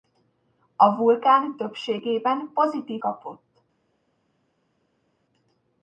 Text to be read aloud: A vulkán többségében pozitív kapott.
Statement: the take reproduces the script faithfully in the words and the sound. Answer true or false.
true